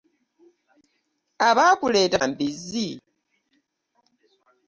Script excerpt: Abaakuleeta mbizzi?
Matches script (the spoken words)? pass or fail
pass